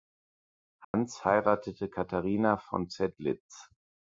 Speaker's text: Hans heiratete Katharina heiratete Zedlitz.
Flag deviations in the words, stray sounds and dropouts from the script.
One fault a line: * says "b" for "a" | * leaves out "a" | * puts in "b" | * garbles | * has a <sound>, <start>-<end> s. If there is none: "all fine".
* has a dropout, 0.8-0.9 s
* says "von" for "heiratete"